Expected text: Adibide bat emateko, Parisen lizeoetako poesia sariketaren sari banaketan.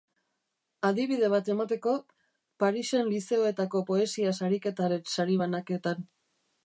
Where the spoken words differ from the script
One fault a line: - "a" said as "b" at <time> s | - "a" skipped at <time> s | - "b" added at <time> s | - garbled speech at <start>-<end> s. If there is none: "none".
none